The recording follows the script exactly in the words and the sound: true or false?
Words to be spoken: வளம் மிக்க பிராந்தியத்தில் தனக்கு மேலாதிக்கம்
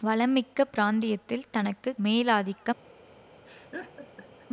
false